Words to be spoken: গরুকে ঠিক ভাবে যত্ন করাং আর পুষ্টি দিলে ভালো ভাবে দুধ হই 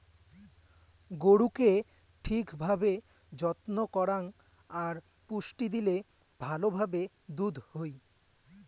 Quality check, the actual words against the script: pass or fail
pass